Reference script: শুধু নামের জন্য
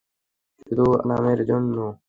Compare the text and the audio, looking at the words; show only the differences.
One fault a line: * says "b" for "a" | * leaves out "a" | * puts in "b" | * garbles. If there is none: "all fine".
all fine